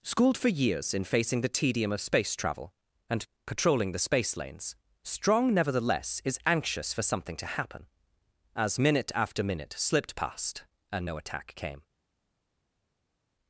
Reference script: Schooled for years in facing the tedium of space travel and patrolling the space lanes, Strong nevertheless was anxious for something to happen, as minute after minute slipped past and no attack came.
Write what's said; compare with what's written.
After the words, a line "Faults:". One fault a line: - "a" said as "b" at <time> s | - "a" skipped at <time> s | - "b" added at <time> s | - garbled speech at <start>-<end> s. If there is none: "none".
Schooled for years in facing the tedium of space travel and patrolling the space lanes, Strong nevertheless is anxious for something to happen, as minute after minute slipped past and no attack came.
Faults:
- "was" said as "is" at 6.2 s